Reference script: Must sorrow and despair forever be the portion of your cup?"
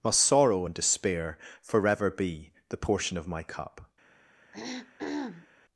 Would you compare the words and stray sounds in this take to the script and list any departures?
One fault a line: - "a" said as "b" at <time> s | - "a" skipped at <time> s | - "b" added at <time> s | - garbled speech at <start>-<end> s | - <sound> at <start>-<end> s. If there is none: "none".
- "your" said as "my" at 3.3 s
- throat clearing at 4.5-5.5 s